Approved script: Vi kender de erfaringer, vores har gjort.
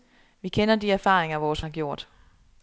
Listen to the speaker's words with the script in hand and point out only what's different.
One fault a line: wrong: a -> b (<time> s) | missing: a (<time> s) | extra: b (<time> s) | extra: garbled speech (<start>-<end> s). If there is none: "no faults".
no faults